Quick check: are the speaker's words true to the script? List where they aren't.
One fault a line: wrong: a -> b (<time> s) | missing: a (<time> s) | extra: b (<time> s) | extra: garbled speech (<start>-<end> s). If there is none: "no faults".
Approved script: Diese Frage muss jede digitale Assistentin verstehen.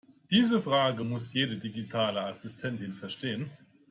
no faults